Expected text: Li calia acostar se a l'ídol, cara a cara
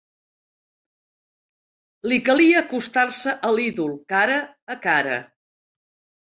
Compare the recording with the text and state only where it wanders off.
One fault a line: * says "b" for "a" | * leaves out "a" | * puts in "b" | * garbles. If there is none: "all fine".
all fine